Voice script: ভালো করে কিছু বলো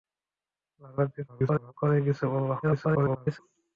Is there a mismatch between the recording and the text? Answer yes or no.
yes